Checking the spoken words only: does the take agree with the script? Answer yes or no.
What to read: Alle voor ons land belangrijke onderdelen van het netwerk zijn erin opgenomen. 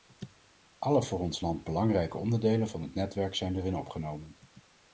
yes